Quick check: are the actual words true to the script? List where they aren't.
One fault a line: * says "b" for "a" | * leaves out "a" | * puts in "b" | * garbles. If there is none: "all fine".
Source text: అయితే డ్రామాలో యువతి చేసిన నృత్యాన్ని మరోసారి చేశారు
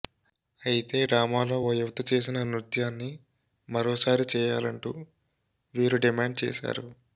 * puts in "ఓ"
* puts in "చేయాలంటూ వీరు డిమాండ్"